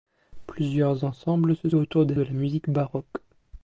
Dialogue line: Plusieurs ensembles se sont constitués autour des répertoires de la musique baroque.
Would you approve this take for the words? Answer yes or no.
no